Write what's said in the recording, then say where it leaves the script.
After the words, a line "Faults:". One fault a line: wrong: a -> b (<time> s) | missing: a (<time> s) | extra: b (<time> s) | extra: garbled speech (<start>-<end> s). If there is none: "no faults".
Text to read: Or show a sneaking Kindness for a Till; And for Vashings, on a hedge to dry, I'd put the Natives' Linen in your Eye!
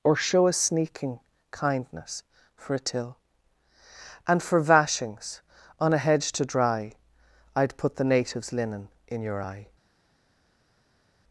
Or show a sneaking Kindness for a Till; And for Vashings, on a hedge to dry, I'd put the Natives' Linen in your Eye!
Faults:
no faults